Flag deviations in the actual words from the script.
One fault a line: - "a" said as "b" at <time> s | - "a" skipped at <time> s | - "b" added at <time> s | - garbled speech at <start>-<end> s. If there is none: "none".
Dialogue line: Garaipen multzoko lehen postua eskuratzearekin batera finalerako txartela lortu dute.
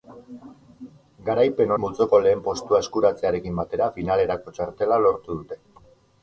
none